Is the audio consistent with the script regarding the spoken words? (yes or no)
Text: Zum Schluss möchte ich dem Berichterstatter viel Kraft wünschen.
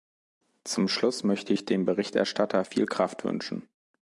yes